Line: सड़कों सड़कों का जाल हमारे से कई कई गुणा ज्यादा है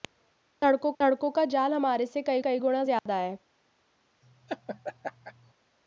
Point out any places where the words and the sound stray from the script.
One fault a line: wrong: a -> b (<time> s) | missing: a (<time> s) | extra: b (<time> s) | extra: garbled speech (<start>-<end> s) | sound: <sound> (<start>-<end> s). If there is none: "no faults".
sound: dropout (3.0-3.1 s)
sound: laugh (4.2-5.5 s)